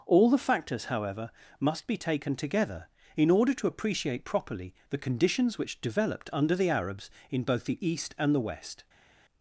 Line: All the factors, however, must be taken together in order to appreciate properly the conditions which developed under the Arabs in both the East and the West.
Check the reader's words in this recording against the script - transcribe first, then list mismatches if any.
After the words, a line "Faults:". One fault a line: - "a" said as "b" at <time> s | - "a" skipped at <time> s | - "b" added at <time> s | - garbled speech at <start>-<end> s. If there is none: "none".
All the factors, however, must be taken together in order to appreciate properly the conditions which developed under the Arabs in both the East and the West.
Faults:
none